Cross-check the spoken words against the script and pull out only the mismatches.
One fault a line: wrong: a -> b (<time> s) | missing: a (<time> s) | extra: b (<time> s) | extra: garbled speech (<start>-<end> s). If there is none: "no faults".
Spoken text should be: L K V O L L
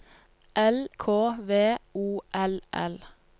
no faults